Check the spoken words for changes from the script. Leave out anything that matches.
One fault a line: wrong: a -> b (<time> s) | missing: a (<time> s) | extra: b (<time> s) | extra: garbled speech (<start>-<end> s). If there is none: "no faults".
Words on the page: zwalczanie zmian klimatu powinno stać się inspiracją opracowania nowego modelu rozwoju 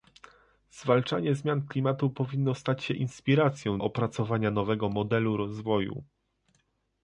no faults